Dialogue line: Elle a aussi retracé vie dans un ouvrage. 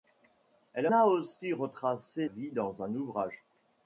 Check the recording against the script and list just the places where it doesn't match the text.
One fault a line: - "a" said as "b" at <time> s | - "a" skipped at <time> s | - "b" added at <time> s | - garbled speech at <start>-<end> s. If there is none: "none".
none